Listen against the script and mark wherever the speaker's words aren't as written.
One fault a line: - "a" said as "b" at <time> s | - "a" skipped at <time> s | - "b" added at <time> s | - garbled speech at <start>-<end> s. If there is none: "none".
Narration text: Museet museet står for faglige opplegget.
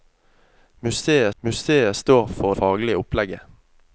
none